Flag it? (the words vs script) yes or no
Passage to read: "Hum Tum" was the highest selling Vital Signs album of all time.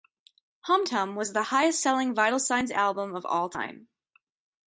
no